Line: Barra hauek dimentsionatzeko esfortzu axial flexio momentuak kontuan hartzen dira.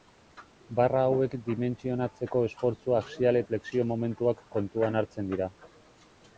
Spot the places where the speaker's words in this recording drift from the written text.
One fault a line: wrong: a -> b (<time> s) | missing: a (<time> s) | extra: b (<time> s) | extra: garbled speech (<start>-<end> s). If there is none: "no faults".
no faults